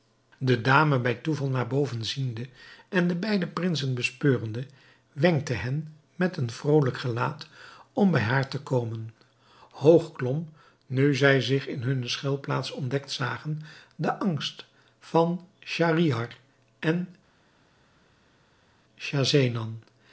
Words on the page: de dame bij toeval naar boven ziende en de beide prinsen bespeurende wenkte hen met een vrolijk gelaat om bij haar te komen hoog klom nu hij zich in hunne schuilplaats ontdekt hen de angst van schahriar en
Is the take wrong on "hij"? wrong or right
wrong